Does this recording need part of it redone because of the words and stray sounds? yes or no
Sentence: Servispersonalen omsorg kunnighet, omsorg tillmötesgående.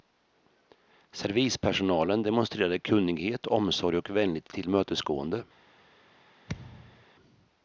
yes